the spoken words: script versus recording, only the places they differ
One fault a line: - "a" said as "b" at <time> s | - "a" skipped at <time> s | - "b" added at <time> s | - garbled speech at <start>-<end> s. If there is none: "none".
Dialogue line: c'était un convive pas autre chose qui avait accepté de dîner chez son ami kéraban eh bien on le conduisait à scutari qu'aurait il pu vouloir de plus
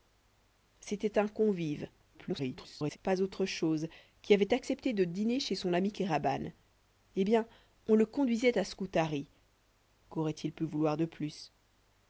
- garbled speech at 2.1-3.0 s